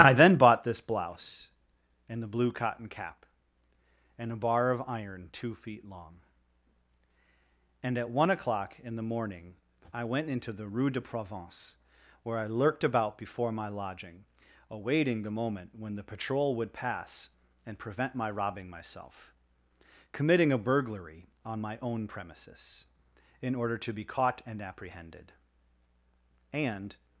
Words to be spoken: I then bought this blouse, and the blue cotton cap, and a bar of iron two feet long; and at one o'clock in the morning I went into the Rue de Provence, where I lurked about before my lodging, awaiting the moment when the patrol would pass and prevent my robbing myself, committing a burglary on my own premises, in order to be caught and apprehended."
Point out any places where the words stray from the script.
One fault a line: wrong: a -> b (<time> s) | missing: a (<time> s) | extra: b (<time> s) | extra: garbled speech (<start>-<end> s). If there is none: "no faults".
extra: And (26.5 s)